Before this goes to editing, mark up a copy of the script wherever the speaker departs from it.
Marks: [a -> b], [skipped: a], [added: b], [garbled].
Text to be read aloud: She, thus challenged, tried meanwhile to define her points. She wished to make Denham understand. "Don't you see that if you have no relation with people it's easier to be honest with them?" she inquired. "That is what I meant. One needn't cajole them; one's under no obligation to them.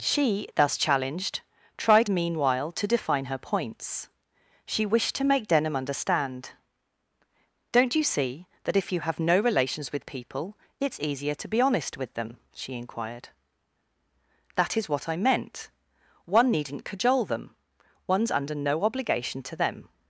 She, thus challenged, tried meanwhile to define her points. She wished to make Denham understand. "Don't you see that if you have no [relation -> relations] with people it's easier to be honest with them?" she inquired. "That is what I meant. One needn't cajole them; one's under no obligation to them.